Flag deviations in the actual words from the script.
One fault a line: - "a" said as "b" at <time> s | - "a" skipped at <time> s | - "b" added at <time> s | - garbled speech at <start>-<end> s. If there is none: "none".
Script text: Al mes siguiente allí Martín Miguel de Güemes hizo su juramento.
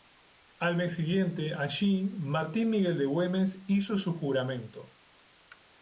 none